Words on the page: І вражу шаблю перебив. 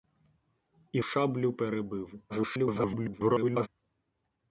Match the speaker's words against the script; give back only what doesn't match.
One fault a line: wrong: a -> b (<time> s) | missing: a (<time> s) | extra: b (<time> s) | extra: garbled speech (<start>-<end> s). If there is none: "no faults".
missing: вражу (1.0 s)
extra: garbled speech (2.3-3.7 s)